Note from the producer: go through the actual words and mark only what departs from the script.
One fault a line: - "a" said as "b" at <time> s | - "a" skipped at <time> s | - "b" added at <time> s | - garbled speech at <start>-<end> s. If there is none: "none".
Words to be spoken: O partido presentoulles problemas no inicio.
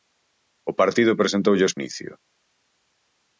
- "problemas no" skipped at 1.8 s